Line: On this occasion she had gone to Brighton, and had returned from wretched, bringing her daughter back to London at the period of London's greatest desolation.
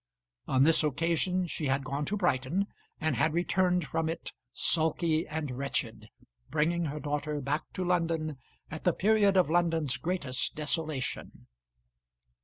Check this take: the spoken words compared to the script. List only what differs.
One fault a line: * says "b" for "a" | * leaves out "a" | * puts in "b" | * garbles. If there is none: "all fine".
* puts in "it sulky and"